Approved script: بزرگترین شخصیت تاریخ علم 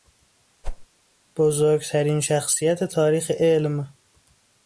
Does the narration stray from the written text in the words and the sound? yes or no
yes